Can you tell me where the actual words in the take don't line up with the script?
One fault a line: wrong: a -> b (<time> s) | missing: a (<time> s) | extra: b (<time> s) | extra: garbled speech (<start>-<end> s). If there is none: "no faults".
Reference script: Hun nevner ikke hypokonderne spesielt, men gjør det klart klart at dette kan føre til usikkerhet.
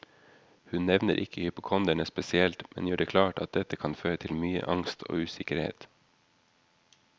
missing: klart (3.4 s)
extra: mye angst og (4.3 s)